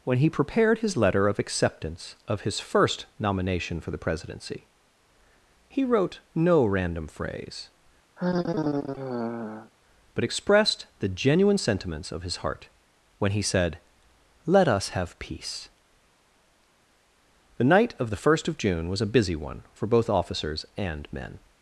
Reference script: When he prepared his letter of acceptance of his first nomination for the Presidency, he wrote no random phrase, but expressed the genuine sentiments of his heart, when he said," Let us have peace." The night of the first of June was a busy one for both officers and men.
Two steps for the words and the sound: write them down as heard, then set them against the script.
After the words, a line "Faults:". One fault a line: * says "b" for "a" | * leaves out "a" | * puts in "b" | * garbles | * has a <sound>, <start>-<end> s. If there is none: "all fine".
When he prepared his letter of acceptance of his first nomination for the Presidency, he wrote no random phrase, but expressed the genuine sentiments of his heart, when he said," Let us have peace." The night of the first of June was a busy one for both officers and men.
Faults:
* has a sigh, 8.2-9.7 s